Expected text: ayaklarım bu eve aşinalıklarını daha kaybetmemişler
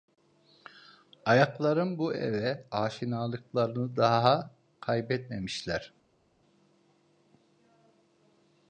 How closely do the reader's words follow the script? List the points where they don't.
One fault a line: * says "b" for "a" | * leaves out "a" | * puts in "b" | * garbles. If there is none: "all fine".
all fine